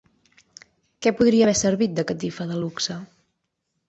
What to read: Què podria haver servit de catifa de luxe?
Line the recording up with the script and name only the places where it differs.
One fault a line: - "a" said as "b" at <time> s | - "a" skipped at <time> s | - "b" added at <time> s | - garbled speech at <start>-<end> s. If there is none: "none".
none